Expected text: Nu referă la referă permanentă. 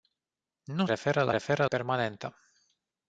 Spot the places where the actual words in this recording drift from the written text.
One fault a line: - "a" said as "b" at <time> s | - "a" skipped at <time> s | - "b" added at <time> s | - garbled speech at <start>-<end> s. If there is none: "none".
none